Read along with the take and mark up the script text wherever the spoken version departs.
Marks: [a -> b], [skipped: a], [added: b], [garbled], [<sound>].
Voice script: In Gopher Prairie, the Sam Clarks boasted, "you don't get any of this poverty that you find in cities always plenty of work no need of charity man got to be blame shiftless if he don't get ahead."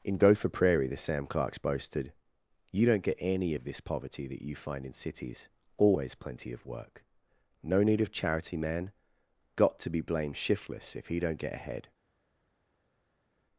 In Gopher Prairie, the Sam Clarks boasted, "you don't get any of this poverty that you find in cities always plenty of work no need of charity man got to be [blame -> blamed] shiftless if he don't get ahead."